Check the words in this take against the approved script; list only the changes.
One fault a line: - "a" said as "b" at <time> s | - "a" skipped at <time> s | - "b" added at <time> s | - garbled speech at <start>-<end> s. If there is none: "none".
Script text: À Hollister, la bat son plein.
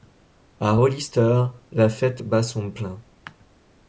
- "fête" added at 1.9 s